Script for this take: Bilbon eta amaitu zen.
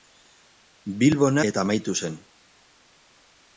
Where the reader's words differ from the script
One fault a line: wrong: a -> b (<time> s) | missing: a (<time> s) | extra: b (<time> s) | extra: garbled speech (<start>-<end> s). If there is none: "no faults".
no faults